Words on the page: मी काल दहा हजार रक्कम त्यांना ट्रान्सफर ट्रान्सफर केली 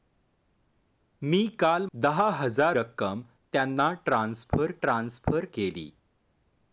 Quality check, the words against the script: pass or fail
pass